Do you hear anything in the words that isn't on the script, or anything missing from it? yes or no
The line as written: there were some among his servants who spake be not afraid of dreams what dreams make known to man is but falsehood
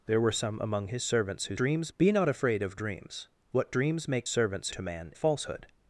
yes